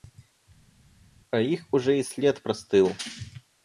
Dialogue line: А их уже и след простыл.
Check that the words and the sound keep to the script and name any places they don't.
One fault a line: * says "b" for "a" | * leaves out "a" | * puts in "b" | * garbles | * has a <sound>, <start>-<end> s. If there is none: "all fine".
all fine